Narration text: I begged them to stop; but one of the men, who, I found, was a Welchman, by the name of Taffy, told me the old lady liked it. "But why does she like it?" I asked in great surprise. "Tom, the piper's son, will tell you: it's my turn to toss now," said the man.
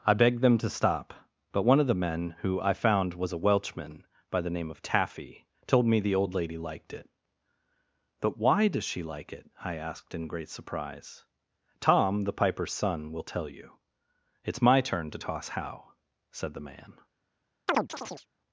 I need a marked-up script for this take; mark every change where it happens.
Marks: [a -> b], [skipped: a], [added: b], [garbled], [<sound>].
I begged them to stop; but one of the men, who, I found, was a Welchman, by the name of Taffy, told me the old lady liked it. "But why does she like it?" I asked in great surprise. "Tom, the piper's son, will tell you: it's my turn to toss [now," -> how] said the man. [chirp]